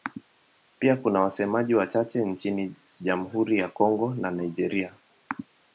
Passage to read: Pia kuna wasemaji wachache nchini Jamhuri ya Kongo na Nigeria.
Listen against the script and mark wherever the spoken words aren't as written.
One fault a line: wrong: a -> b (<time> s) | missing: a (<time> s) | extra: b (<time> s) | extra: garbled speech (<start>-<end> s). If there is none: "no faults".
no faults